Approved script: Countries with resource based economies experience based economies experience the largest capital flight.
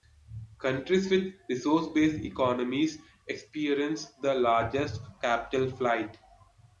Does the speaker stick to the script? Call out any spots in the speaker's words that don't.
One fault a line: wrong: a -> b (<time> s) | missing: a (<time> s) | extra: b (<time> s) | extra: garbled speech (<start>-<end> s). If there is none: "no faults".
missing: based economies experience (4.1 s)